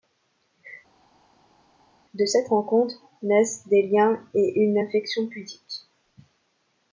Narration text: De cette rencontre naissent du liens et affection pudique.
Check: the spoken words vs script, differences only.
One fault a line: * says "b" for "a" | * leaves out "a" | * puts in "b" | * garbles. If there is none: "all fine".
* says "des" for "du"
* puts in "une"